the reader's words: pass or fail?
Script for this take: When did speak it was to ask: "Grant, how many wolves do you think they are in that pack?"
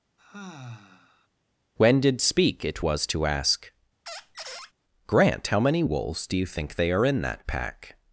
pass